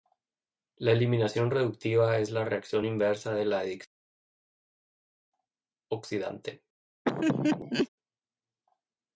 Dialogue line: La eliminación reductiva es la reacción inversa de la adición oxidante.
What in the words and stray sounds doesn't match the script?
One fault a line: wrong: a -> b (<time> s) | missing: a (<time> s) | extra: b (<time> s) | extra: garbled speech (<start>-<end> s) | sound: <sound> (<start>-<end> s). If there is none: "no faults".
sound: laugh (7.0-7.9 s)